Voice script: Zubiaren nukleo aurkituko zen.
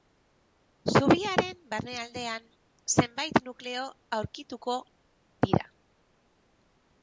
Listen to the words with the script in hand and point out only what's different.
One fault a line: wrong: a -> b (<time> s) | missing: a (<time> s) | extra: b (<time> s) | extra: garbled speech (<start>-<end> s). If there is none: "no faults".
extra: barnealdean zenbait (1.7 s)
wrong: zen -> dira (5.5 s)